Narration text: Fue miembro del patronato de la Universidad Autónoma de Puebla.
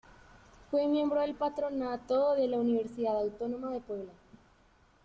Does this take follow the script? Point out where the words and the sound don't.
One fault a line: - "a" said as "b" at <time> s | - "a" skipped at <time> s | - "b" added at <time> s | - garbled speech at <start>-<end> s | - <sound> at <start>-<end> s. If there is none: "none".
none